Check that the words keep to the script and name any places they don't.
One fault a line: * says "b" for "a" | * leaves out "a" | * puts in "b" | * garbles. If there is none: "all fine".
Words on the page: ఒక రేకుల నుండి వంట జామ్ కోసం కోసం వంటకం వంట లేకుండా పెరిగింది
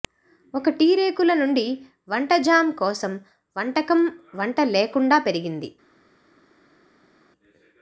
* puts in "టీ"
* leaves out "కోసం"